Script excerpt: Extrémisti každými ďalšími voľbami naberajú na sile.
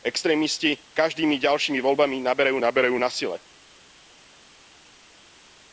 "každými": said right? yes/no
yes